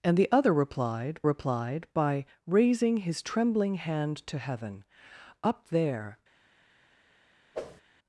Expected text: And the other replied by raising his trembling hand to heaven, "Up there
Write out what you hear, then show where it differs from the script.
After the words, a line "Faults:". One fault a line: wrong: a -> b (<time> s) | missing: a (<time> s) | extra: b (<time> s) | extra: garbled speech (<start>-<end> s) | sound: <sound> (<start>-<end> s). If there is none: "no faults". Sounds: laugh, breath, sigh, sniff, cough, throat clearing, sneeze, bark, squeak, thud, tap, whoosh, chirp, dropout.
And the other replied replied by raising his trembling hand to heaven, "Up there
Faults:
extra: replied (1.2 s)
sound: whoosh (7.5-7.8 s)